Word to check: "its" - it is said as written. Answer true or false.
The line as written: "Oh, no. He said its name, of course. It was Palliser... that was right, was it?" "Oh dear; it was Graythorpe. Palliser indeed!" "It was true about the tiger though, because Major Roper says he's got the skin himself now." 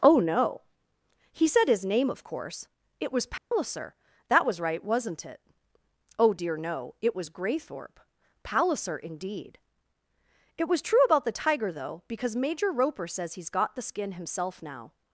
false